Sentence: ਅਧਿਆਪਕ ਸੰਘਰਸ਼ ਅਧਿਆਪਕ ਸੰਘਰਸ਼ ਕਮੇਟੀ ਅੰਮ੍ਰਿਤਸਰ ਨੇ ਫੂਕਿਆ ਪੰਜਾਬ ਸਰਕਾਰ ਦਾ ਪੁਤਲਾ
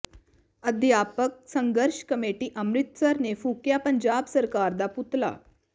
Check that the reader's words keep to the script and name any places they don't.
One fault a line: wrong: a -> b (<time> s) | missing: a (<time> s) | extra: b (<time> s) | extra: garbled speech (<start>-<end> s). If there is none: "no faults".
missing: ਅਧਿਆਪਕ ਸੰਘਰਸ਼ (2.0 s)